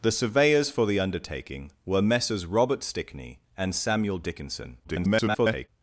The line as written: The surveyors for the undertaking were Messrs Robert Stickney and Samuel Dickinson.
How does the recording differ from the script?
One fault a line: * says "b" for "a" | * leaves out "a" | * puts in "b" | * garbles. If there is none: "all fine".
* garbles